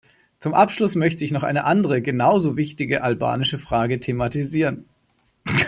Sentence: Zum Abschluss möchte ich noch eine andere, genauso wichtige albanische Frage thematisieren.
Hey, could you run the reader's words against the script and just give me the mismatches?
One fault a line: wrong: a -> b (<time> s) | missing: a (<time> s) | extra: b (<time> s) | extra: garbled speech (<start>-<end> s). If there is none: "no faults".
no faults